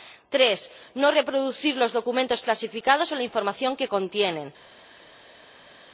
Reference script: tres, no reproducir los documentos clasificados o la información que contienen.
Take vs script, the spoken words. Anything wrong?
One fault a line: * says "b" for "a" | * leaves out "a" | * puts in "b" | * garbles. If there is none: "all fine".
all fine